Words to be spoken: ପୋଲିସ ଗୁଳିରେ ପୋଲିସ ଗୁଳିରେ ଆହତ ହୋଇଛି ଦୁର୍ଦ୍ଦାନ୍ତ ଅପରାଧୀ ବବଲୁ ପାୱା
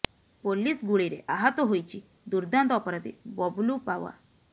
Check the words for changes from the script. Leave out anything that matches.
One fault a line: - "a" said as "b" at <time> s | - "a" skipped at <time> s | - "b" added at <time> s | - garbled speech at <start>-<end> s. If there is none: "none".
- "ପୋଲିସ ଗୁଳିରେ" skipped at 1.2 s